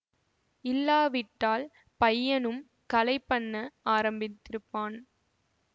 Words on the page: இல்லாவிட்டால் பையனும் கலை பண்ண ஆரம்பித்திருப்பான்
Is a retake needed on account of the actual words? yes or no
no